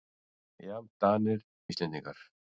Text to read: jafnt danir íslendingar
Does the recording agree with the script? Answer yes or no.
yes